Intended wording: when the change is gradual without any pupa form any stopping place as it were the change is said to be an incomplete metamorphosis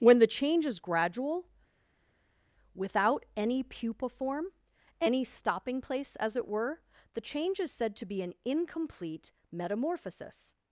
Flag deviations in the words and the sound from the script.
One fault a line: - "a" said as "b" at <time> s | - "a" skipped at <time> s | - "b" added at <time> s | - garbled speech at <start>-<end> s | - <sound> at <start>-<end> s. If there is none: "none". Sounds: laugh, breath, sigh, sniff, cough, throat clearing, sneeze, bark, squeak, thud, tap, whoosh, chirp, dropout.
none